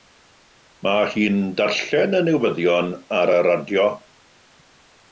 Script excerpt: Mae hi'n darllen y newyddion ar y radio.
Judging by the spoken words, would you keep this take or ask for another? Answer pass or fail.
pass